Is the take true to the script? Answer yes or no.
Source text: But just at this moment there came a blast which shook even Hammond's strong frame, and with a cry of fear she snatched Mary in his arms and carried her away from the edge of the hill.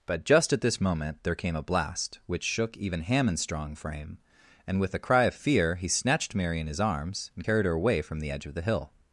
no